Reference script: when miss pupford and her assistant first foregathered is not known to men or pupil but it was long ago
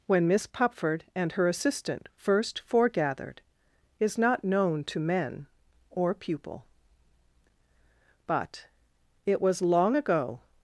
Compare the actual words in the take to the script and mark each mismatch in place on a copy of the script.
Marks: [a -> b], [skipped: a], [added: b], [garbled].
when miss pupford and her assistant first foregathered is not known to men or pupil but it was long ago